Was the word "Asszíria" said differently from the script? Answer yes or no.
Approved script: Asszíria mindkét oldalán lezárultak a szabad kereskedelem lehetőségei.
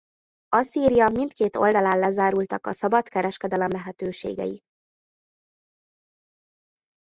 no